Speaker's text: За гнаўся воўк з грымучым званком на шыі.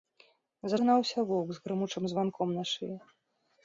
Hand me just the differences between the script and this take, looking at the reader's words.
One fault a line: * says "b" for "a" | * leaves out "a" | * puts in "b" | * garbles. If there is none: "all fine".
all fine